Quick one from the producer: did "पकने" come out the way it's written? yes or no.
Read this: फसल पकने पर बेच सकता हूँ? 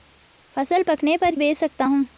yes